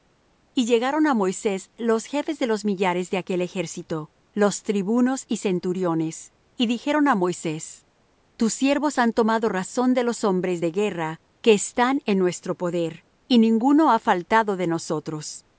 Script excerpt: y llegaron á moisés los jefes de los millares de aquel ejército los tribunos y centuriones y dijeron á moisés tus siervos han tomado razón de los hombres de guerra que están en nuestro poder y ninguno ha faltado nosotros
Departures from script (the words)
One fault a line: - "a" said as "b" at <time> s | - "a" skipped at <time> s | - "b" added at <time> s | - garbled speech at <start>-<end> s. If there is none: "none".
- "de" added at 14.6 s